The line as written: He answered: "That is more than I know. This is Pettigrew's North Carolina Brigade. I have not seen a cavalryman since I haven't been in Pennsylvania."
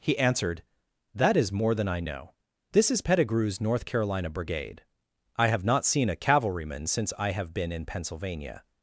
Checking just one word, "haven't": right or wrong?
wrong